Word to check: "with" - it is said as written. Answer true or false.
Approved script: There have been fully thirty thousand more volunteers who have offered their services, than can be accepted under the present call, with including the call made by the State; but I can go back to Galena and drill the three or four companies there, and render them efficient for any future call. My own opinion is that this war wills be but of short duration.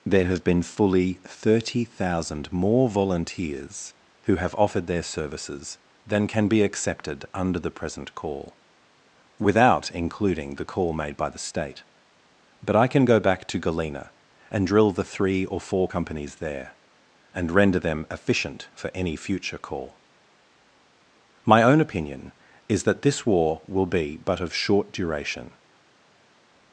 false